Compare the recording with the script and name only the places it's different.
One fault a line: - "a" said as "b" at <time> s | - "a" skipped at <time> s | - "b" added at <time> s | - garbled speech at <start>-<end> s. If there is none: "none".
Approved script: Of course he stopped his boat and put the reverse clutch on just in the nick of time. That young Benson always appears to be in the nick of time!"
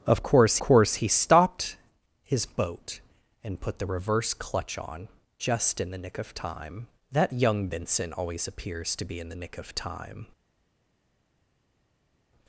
- "course" added at 0.6 s